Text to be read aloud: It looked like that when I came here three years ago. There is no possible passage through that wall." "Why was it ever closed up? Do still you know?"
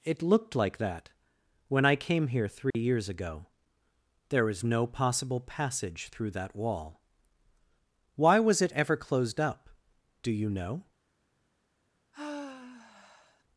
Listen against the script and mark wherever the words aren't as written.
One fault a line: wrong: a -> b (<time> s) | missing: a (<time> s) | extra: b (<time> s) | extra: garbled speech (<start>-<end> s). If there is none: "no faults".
missing: still (10.3 s)